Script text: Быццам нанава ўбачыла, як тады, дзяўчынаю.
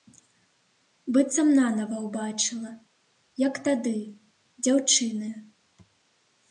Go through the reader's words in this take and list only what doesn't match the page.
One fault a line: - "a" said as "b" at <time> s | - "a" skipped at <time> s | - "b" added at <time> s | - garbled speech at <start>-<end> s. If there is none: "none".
none